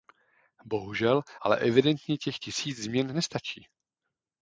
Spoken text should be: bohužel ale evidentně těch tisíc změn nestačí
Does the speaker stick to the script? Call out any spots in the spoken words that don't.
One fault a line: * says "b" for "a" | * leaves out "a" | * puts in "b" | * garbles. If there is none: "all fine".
all fine